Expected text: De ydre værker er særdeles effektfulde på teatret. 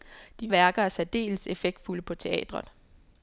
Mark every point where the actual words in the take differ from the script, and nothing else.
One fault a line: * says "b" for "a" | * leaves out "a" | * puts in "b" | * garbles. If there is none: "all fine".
* leaves out "ydre"